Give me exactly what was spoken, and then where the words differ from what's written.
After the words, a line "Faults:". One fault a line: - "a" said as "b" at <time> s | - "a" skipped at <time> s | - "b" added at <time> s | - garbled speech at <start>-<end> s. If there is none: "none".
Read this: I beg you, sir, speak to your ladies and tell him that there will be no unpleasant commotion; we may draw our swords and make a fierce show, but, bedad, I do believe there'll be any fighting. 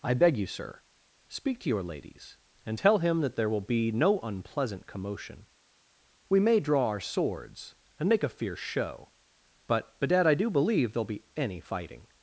I beg you, sir, speak to your ladies and tell him that there will be no unpleasant commotion; we may draw our swords and make a fierce show, but, bedad, I do believe there'll be any fighting.
Faults:
none